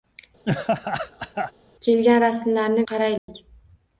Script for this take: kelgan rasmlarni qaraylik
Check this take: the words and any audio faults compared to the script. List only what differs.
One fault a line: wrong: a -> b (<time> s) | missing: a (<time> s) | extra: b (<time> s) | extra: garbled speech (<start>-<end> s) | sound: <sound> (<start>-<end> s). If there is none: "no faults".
sound: laugh (0.5-1.5 s)
sound: dropout (3.2-3.3 s)